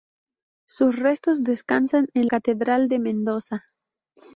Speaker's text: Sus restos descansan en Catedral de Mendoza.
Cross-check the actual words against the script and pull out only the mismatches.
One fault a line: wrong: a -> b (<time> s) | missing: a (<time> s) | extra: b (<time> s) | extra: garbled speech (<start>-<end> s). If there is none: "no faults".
no faults